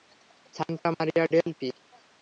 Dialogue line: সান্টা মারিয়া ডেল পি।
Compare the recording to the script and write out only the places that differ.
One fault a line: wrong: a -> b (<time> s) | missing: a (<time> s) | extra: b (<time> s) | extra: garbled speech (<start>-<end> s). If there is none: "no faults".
no faults